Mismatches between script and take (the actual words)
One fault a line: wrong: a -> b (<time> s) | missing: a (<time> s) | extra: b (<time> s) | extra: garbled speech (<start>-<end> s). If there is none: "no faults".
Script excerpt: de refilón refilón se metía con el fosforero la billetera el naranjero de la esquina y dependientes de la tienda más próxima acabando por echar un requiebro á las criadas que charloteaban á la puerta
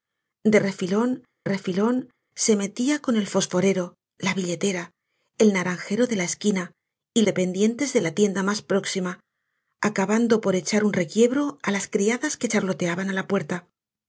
no faults